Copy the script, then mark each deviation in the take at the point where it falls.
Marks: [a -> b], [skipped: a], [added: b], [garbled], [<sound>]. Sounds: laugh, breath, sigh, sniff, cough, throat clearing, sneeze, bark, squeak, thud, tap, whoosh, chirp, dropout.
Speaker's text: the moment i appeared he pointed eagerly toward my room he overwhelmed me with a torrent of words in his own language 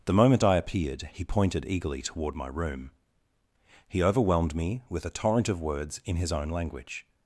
the moment i appeared he pointed eagerly toward my room he overwhelmed me with a torrent of words in his own language